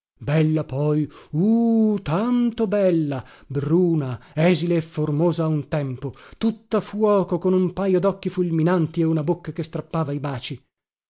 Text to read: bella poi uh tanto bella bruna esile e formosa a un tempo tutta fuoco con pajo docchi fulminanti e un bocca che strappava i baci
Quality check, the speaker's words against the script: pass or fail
fail